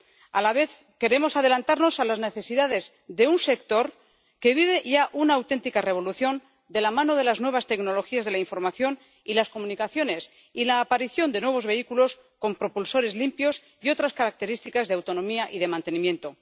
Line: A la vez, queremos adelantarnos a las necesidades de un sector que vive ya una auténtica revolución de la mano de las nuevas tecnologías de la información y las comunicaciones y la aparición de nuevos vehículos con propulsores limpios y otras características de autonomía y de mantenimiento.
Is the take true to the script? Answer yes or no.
yes